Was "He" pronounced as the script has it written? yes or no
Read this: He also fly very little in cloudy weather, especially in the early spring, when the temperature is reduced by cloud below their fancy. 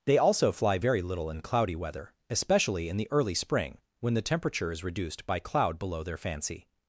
no